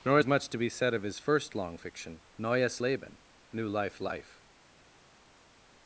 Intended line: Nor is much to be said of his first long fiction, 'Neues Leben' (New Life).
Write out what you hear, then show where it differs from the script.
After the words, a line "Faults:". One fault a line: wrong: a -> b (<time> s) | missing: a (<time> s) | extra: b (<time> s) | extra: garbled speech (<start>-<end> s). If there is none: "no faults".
Nor is much to be said of his first long fiction, 'Neues Leben' (New Life Life).
Faults:
extra: Life (4.0 s)